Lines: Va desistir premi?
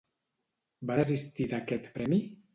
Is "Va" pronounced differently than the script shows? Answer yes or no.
no